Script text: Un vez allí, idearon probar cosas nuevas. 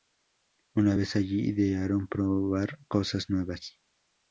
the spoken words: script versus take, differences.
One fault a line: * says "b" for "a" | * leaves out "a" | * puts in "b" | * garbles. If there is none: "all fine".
* says "Una" for "Un"